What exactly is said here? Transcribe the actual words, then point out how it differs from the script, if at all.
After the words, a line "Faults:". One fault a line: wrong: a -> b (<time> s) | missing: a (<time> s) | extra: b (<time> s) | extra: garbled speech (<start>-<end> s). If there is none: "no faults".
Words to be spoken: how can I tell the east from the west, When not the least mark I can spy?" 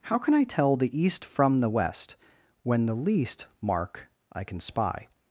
how can I tell the east from the west, When the least mark I can spy?"
Faults:
missing: not (2.9 s)